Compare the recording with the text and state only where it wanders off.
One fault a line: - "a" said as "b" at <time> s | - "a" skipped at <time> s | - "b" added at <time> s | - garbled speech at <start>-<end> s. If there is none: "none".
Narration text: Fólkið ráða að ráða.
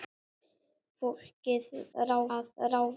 none